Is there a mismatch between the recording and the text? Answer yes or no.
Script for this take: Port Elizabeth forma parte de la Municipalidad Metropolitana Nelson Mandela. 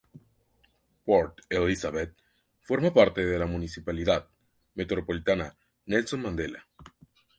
no